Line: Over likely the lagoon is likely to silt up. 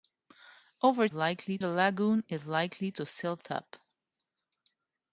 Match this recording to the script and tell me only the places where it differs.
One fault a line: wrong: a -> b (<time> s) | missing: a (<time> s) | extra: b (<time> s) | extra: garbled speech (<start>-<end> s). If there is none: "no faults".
no faults